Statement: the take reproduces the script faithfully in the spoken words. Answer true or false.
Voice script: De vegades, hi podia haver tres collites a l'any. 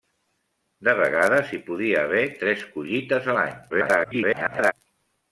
false